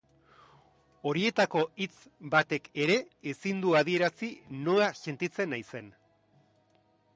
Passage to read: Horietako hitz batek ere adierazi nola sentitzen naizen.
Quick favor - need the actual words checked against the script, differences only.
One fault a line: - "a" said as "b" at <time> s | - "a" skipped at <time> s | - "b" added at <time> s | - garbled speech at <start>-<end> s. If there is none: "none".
- "ezin du" added at 3.3 s